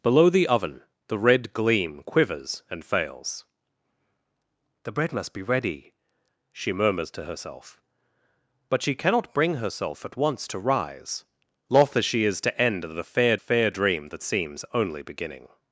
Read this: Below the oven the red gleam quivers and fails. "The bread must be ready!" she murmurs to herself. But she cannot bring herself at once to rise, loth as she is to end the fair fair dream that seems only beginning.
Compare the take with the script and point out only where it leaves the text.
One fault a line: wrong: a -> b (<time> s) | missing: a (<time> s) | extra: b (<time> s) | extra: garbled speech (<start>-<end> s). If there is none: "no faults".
no faults